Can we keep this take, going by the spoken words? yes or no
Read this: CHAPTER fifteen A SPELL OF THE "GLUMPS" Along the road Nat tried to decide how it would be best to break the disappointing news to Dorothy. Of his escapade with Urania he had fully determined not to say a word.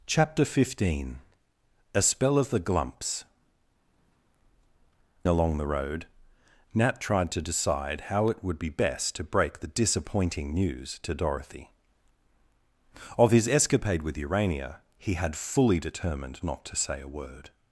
yes